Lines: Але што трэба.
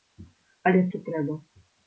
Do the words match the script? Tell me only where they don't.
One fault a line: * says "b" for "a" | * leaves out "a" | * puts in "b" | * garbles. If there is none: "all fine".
all fine